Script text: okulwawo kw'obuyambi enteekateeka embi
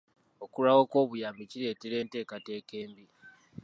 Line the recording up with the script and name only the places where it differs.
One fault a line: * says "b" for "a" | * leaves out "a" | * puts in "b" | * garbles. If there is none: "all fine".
* puts in "kireetera"